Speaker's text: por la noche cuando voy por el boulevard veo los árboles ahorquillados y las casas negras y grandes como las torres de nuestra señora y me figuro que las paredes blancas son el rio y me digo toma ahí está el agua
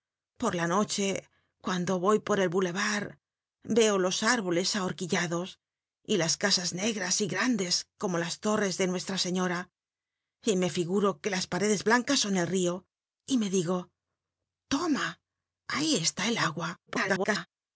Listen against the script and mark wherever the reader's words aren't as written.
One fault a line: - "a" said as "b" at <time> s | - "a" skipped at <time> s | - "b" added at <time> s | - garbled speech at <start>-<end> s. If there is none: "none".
- garbled speech at 16.9-17.5 s